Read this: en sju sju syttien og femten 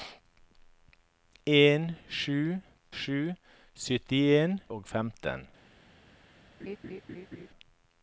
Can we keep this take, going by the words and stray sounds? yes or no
no